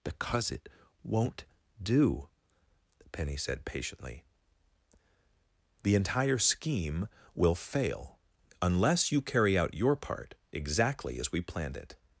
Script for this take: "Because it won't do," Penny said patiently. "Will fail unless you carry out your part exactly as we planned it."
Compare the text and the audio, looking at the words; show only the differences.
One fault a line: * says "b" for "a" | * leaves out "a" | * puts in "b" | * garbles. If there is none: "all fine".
* puts in "The entire scheme"